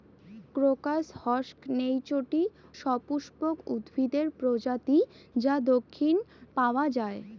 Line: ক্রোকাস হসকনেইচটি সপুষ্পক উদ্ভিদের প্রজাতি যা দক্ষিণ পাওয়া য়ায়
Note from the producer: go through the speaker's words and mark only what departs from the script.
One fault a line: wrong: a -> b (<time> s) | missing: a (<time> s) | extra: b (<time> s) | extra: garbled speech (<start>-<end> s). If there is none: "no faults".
no faults